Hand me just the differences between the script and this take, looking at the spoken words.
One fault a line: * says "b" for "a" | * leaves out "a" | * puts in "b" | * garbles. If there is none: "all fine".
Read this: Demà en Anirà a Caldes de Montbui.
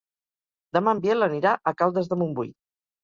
* puts in "Biel"